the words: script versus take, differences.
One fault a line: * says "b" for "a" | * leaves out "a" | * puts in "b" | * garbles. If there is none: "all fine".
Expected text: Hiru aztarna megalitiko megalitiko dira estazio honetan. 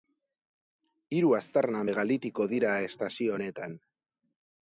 * leaves out "megalitiko"